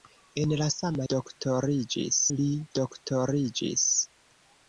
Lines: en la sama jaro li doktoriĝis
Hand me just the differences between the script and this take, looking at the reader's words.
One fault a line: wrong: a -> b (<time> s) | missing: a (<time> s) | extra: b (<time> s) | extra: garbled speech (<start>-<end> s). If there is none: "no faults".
wrong: jaro -> doktoriĝis (1.1 s)